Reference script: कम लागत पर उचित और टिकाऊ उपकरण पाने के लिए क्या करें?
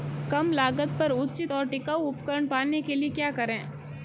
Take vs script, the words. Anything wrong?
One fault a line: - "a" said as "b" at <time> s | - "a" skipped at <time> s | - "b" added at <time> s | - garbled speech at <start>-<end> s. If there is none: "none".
none